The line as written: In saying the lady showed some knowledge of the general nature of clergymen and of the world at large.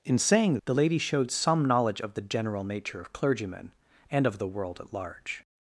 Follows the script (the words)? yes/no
yes